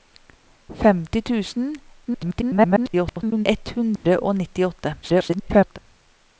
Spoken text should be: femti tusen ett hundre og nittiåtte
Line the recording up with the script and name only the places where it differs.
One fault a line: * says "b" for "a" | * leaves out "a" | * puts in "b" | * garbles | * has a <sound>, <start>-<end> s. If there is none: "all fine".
* garbles
* has a dropout, 4.0-4.0 s
* garbles